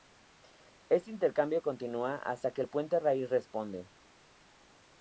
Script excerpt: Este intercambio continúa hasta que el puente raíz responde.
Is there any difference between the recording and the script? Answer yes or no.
no